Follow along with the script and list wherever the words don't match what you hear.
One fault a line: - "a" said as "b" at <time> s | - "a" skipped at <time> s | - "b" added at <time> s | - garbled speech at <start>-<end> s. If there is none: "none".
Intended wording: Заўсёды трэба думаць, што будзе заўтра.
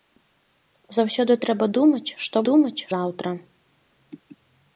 - "будзе" said as "думаць" at 2.5 s